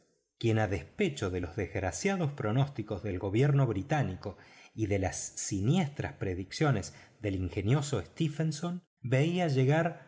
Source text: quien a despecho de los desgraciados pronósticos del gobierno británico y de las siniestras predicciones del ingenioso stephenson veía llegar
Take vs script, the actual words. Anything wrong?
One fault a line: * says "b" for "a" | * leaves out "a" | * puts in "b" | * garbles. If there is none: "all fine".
all fine